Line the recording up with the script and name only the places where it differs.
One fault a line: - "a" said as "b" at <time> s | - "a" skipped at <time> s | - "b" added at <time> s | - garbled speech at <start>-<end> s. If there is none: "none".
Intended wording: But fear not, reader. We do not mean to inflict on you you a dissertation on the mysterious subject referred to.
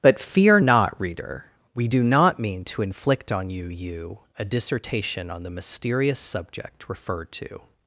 none